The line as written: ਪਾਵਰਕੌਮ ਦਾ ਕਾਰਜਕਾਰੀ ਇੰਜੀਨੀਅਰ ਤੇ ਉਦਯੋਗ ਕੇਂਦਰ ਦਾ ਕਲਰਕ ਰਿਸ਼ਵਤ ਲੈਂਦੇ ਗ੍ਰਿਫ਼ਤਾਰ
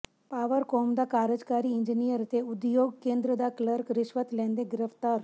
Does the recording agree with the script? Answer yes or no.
yes